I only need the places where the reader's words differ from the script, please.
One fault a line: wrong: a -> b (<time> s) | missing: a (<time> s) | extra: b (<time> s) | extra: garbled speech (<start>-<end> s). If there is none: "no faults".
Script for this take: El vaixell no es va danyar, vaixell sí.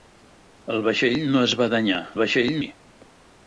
no faults